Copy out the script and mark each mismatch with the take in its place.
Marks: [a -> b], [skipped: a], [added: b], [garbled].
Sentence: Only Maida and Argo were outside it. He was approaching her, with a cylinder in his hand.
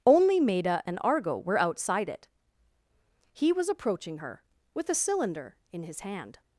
Only Maida and Argo were outside it. He was approaching her, with a cylinder in his hand.